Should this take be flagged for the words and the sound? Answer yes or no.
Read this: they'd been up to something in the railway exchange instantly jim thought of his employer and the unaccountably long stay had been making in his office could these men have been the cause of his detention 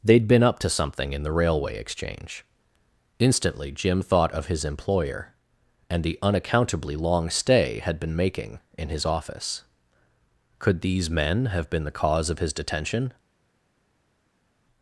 no